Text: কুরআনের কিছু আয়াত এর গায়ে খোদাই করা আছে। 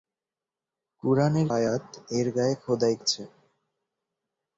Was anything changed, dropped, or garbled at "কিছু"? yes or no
yes